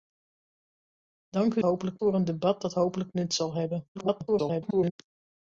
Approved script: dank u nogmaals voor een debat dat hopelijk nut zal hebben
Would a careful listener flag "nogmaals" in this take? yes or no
yes